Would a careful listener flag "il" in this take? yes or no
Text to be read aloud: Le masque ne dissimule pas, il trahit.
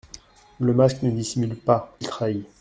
yes